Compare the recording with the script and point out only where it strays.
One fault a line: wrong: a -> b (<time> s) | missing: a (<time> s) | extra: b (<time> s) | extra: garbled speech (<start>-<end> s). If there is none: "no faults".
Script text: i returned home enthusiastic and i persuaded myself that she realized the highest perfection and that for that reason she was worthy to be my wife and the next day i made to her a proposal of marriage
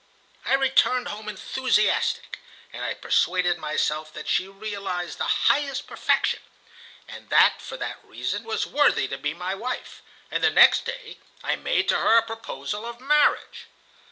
missing: she (8.5 s)